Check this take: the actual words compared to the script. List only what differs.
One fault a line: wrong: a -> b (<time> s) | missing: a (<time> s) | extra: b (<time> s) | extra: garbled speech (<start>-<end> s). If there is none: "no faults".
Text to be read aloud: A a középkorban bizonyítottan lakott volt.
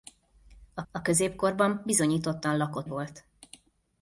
no faults